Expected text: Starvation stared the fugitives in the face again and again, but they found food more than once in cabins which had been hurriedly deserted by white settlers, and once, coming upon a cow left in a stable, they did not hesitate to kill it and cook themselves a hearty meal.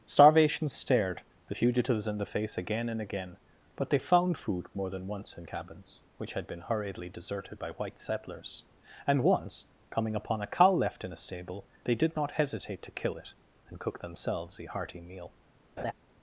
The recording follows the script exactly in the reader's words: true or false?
true